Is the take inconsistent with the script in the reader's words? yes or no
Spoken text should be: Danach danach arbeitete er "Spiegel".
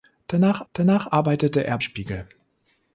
no